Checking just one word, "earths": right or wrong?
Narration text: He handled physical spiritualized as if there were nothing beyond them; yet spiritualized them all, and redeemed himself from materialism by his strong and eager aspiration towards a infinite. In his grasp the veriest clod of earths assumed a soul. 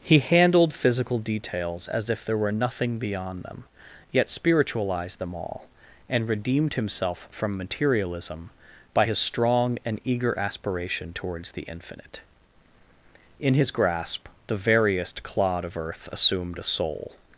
wrong